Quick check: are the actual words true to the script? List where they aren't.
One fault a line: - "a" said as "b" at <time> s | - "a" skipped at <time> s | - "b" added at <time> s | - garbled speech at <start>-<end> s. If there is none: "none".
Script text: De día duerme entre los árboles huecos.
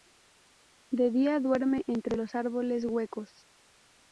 none